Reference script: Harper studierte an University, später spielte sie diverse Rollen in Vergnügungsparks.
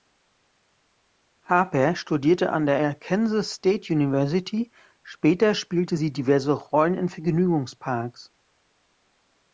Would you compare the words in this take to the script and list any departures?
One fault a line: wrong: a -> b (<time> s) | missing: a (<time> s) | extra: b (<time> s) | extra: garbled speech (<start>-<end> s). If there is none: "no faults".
extra: der Arkansas State (2.6 s)